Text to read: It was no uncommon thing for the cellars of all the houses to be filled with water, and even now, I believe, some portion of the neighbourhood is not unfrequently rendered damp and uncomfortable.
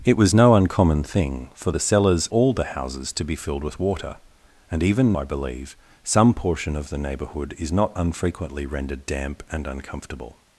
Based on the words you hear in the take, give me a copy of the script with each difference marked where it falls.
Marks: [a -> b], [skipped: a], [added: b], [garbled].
It was no uncommon thing for the cellars [skipped: of] all the houses to be filled with water, and even [skipped: now,] I believe, some portion of the neighbourhood is not unfrequently rendered damp and uncomfortable.